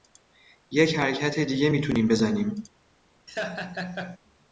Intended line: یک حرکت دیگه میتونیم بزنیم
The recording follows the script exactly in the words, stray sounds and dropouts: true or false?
false